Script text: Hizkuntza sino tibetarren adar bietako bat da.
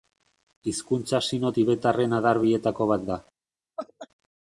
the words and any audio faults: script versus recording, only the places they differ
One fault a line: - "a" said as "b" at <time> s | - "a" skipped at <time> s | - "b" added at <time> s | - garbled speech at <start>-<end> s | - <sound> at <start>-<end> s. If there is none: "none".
- laugh at 3.8-4.1 s